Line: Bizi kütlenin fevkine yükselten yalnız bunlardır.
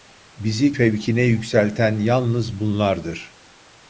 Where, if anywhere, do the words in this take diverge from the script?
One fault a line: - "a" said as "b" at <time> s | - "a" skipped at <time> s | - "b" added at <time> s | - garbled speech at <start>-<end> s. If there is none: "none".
- "kütlenin" skipped at 0.8 s